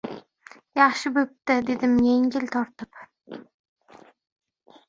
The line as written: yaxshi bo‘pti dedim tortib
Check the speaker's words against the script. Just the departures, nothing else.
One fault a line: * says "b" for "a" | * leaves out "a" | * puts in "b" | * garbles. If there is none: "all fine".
* puts in "yengil"